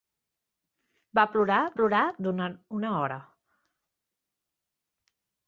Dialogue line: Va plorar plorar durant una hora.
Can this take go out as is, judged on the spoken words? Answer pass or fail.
pass